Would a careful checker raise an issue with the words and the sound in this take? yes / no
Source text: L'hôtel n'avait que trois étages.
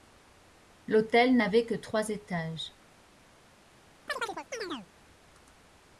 yes